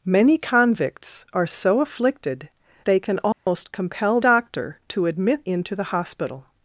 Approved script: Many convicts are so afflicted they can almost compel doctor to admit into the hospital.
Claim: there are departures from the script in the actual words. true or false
false